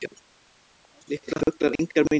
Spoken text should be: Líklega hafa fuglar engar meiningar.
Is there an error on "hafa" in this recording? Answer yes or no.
yes